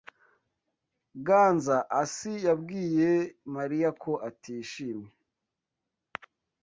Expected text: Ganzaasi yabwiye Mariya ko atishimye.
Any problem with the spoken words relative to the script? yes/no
no